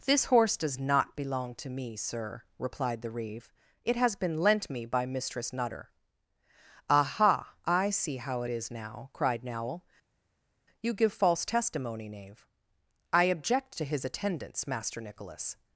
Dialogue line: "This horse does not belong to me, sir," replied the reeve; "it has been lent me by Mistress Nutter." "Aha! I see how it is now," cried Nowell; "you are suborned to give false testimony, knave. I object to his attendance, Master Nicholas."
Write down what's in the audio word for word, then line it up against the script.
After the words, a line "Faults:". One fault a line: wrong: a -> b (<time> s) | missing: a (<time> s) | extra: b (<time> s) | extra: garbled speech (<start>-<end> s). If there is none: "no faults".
"This horse does not belong to me, sir," replied the reeve; "it has been lent me by Mistress Nutter." "Aha! I see how it is now," cried Nowell; "you give false testimony, knave. I object to his attendance, Master Nicholas."
Faults:
missing: are suborned to (10.9 s)